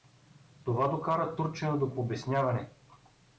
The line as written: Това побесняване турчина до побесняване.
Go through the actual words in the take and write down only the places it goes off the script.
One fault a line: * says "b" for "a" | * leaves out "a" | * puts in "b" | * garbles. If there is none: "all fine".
* says "докара" for "побесняване"